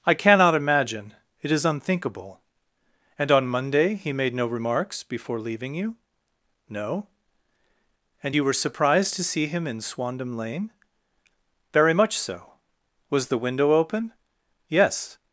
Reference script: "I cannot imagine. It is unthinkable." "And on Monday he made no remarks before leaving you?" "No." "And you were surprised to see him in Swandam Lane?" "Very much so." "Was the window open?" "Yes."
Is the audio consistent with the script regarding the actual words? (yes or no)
yes